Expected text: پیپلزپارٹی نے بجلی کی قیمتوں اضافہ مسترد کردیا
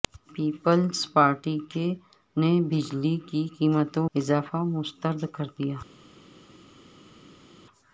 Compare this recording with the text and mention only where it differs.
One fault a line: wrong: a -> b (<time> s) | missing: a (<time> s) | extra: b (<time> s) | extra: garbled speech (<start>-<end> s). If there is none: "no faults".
no faults